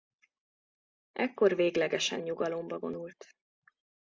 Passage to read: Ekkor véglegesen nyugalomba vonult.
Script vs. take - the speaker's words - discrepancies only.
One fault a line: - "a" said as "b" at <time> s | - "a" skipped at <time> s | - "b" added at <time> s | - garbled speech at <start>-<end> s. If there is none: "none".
none